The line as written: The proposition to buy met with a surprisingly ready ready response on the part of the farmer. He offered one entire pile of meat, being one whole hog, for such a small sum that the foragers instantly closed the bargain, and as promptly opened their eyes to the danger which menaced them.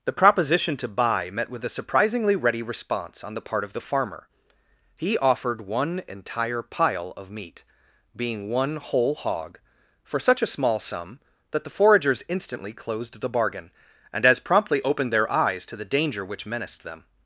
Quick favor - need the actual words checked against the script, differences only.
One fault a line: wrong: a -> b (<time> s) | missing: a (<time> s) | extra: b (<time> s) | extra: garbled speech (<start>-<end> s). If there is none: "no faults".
missing: ready (2.6 s)